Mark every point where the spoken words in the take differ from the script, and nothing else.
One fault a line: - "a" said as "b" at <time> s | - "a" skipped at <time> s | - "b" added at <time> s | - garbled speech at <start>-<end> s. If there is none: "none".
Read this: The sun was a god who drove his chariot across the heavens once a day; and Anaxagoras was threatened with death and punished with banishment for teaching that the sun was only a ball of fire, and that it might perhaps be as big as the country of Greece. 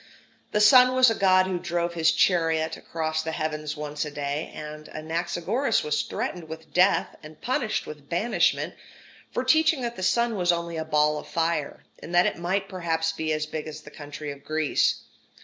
none